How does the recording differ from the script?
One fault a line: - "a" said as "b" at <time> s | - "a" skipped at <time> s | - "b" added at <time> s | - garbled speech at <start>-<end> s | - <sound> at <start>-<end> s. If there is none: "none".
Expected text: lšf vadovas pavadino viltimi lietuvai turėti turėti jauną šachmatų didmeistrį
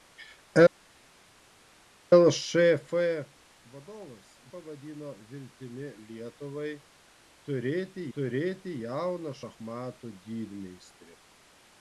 none